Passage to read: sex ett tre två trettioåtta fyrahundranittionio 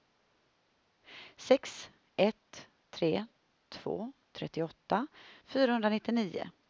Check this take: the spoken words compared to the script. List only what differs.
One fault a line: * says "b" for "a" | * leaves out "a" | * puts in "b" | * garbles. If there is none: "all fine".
all fine